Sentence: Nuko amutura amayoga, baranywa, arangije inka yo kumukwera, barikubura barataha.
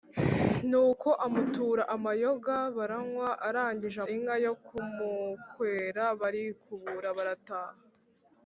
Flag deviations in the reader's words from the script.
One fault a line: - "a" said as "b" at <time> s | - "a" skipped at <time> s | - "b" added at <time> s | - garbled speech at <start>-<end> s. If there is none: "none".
none